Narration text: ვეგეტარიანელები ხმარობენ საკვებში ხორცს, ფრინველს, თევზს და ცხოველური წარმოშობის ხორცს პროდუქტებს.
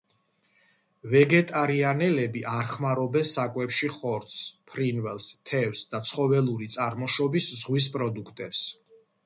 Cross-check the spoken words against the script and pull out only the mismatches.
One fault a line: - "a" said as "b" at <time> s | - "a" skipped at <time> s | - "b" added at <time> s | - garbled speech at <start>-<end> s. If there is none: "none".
- "არ" added at 2.5 s
- "ხორცს" said as "ზღვის" at 7.6 s